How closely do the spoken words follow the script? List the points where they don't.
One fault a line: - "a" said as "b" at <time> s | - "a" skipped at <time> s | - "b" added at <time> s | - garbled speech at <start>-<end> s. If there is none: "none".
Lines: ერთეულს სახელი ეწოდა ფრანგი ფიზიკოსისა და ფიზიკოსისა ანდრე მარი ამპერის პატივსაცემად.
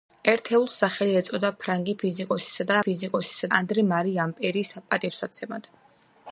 none